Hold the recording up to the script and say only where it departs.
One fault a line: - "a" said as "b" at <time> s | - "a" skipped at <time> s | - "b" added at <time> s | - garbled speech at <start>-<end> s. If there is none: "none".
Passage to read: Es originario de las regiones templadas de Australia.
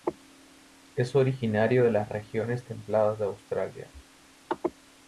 none